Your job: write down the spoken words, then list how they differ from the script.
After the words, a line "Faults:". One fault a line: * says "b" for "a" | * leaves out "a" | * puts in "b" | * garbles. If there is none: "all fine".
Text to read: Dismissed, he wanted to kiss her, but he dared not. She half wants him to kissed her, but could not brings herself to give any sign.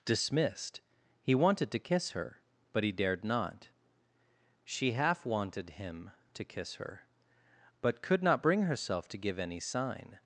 Dismissed, he wanted to kiss her, but he dared not. She half wanted him to kiss her, but could not bring herself to give any sign.
Faults:
* says "wanted" for "wants"
* says "kiss" for "kissed"
* says "bring" for "brings"